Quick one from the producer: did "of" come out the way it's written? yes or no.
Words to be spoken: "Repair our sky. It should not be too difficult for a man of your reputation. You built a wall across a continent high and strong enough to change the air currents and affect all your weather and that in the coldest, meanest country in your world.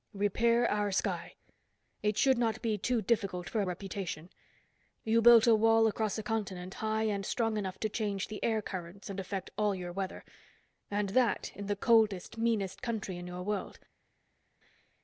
no